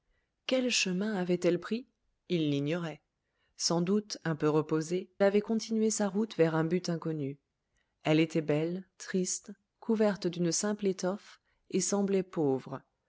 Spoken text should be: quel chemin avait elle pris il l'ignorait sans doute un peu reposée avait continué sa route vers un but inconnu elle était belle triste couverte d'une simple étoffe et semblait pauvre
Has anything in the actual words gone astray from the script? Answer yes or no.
no